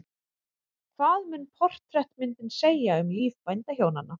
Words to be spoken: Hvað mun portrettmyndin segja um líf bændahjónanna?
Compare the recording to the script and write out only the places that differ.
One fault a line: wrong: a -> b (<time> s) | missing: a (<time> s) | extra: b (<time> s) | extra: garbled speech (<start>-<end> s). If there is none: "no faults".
no faults